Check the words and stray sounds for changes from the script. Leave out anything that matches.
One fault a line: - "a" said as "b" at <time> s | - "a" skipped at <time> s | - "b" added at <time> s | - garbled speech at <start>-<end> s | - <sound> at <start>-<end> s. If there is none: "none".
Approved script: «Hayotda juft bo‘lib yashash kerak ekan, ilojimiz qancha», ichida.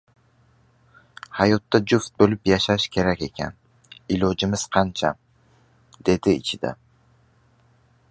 - "dedi" added at 6.1 s